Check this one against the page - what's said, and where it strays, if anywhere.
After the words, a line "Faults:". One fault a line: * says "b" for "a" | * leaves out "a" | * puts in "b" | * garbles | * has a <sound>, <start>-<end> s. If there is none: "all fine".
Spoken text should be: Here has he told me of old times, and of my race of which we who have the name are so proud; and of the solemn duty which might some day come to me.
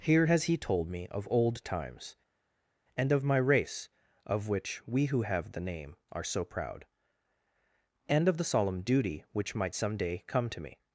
Here has he told me of old times, and of my race of which we who have the name are so proud; and of the solemn duty which might some day come to me.
Faults:
all fine